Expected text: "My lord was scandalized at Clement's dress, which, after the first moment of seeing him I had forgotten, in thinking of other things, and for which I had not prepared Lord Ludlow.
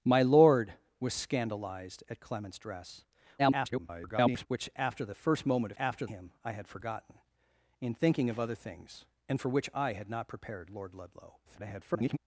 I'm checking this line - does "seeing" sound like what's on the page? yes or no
no